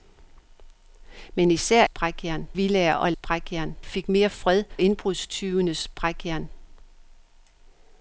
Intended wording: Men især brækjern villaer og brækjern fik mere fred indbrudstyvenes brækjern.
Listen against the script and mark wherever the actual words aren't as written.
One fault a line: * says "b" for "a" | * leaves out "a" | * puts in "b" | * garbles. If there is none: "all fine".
all fine